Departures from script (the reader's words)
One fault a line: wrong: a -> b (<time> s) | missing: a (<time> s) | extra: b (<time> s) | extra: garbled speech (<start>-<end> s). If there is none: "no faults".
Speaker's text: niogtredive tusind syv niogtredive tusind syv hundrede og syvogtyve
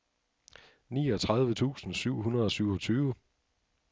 missing: niogtredive tusind syv (2.2 s)